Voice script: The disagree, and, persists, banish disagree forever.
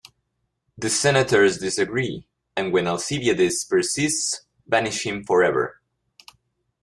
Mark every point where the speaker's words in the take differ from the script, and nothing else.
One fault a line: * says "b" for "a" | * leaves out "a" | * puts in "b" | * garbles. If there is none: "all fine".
* puts in "senators"
* puts in "when Alcibiades"
* says "him" for "disagree"